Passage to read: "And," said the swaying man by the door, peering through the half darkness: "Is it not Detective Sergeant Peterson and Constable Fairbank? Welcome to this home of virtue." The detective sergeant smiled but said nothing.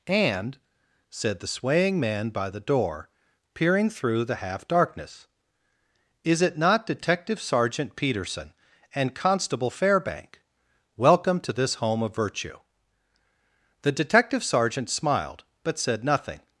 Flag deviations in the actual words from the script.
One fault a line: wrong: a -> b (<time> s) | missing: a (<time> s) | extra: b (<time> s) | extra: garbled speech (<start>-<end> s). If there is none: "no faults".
no faults